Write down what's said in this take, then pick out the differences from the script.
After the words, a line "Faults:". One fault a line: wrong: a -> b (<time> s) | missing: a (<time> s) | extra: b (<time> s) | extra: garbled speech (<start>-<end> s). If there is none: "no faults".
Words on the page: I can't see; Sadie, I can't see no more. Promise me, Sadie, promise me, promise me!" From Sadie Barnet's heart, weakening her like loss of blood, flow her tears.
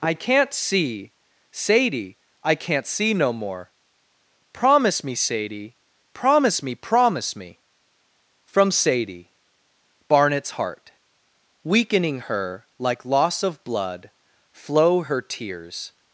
I can't see; Sadie, I can't see no more. Promise me, Sadie, promise me, promise me!" From Sadie Barnet's heart, weakening her like loss of blood, flow her tears.
Faults:
no faults